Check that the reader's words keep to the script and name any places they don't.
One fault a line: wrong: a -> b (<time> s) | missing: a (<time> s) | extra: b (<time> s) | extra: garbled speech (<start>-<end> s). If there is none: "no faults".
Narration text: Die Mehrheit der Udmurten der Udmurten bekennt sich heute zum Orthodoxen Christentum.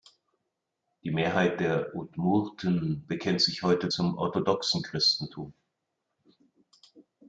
missing: der Udmurten (3.1 s)